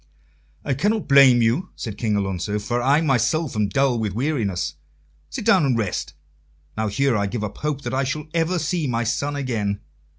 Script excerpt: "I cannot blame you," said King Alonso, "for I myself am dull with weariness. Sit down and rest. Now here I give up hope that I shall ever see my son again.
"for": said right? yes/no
yes